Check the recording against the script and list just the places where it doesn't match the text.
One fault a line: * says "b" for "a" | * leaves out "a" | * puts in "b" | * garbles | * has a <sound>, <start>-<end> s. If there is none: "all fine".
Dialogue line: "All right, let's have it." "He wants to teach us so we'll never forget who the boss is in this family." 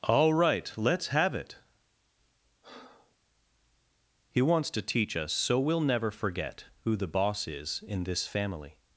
* has a breath, 2.6-3.2 s